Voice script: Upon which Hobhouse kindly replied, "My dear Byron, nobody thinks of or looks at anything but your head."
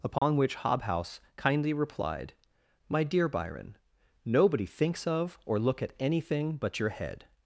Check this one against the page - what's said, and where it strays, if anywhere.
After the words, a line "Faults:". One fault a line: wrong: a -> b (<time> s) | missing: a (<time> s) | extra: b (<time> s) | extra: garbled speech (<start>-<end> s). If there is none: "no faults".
Upon which Hobhouse kindly replied, "My dear Byron, nobody thinks of or look at anything but your head."
Faults:
wrong: looks -> look (5.6 s)